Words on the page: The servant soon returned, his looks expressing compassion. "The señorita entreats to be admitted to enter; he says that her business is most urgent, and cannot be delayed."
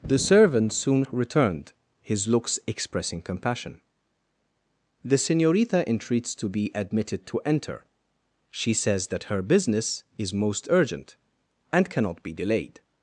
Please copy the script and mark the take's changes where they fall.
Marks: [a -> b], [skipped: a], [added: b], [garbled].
The servant soon returned, his looks expressing compassion. "The señorita entreats to be admitted to enter; [he -> she] says that her business is most urgent, and cannot be delayed."